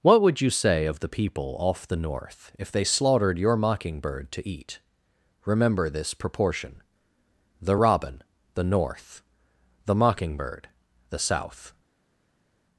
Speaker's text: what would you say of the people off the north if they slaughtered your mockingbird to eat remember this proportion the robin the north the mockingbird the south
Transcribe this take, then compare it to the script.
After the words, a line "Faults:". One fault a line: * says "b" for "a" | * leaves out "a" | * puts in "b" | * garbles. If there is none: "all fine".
what would you say of the people off the north if they slaughtered your mockingbird to eat remember this proportion the robin the north the mockingbird the south
Faults:
all fine